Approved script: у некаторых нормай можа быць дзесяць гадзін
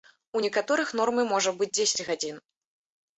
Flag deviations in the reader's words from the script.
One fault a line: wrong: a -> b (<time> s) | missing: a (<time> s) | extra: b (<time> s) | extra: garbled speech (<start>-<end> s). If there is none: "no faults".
no faults